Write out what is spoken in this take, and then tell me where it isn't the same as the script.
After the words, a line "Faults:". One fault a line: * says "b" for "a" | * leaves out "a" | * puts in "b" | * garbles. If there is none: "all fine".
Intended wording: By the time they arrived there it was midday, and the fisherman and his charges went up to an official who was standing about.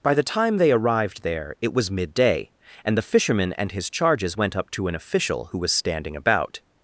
By the time they arrived there it was midday, and the fisherman and his charges went up to an official who was standing about.
Faults:
all fine